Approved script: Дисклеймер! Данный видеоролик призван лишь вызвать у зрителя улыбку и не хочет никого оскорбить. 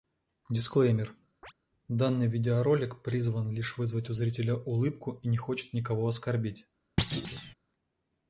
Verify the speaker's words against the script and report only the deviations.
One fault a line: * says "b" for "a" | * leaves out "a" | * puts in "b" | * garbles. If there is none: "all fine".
all fine